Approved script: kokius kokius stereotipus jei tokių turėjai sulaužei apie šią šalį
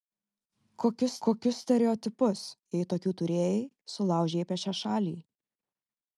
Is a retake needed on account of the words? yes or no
no